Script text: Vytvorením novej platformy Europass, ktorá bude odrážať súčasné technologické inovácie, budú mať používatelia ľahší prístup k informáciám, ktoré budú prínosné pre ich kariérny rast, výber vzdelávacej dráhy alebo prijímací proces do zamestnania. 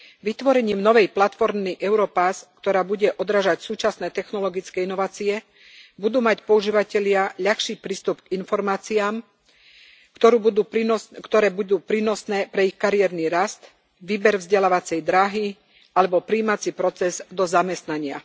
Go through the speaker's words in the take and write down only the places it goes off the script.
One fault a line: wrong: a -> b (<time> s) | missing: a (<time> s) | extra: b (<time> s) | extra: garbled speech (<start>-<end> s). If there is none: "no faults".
no faults